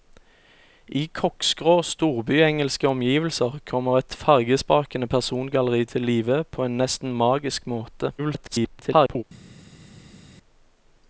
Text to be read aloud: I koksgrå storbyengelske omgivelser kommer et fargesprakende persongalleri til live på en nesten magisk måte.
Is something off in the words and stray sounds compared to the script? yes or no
yes